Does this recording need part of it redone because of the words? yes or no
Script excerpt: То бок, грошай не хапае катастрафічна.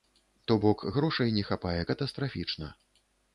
no